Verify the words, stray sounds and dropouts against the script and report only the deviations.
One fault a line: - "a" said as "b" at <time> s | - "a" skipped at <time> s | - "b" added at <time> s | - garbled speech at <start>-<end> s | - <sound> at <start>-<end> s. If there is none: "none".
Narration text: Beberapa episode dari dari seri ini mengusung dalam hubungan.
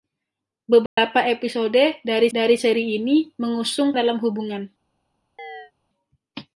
- dropout at 0.9-1.0 s
- chirp at 5.4-5.7 s